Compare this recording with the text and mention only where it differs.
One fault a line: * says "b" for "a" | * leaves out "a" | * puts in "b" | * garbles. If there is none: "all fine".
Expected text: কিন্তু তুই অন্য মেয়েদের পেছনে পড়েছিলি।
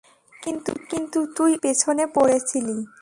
* leaves out "অন্য মেয়েদের"